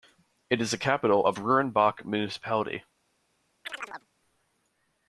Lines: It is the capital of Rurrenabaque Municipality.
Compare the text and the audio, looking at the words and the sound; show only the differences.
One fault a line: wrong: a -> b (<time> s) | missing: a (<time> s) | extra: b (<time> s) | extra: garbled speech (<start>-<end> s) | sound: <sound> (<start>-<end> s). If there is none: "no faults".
sound: chirp (3.7-4.1 s)